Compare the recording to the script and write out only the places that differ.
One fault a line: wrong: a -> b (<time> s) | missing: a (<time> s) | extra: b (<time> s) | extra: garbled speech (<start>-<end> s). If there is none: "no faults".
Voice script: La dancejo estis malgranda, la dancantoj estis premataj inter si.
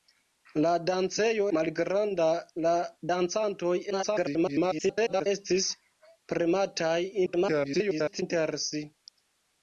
missing: estis (1.5 s)
extra: garbled speech (3.9-5.3 s)
extra: garbled speech (7.3-8.2 s)